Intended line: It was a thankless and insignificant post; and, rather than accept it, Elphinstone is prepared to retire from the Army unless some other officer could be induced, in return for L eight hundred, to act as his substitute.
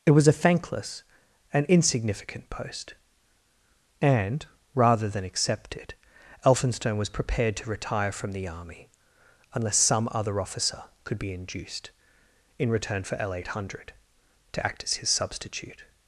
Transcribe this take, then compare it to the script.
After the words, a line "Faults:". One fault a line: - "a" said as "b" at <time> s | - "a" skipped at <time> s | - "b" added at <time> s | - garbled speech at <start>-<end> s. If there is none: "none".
It was a thankless and insignificant post; and, rather than accept it, Elphinstone was prepared to retire from the Army unless some other officer could be induced, in return for L eight hundred, to act as his substitute.
Faults:
- "is" said as "was" at 7.0 s